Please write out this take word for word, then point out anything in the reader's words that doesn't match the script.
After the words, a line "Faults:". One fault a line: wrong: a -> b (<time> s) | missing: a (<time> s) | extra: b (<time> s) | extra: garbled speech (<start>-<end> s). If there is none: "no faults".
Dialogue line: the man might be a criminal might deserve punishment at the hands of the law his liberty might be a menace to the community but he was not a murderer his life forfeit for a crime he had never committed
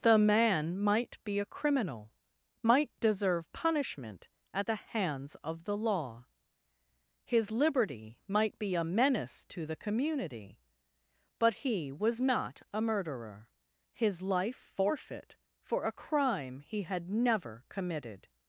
the man might be a criminal might deserve punishment at the hands of the law his liberty might be a menace to the community but he was not a murderer his life forfeit for a crime he had never committed
Faults:
no faults